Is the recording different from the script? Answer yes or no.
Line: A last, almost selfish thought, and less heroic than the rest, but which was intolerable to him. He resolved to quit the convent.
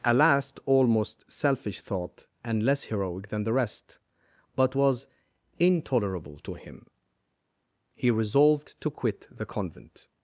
yes